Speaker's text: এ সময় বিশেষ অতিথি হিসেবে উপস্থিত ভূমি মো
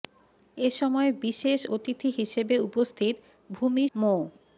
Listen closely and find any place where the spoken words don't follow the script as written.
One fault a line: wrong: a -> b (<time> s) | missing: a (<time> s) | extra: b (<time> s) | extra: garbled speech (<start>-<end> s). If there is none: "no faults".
no faults